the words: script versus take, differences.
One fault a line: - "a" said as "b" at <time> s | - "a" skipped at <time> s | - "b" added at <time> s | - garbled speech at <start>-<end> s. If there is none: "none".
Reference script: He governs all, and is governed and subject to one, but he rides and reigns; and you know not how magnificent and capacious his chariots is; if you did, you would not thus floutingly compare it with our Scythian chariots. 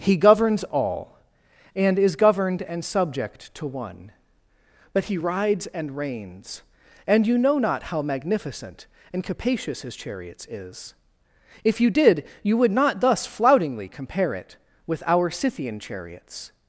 none